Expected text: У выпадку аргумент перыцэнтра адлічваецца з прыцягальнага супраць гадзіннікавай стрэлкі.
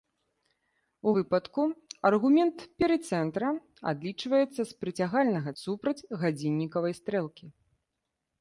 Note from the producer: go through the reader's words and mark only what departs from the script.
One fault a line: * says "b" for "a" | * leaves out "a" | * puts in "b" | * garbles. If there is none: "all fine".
all fine